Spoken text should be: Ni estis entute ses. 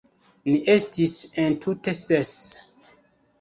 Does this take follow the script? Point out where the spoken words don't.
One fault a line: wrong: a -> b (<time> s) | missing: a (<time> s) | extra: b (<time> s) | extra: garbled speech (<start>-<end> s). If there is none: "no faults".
no faults